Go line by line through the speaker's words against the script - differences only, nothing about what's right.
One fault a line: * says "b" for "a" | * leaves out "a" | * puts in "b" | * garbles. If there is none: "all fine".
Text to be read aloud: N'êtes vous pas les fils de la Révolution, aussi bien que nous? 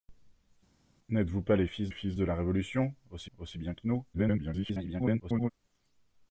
* puts in "fils"
* puts in "aussi"
* garbles